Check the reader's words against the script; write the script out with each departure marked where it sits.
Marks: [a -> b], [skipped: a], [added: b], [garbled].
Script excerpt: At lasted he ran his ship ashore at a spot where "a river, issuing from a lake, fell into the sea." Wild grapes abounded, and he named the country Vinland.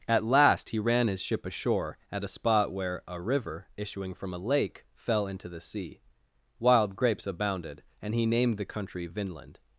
At [lasted -> last] he ran his ship ashore at a spot where "a river, issuing from a lake, fell into the sea." Wild grapes abounded, and he named the country Vinland.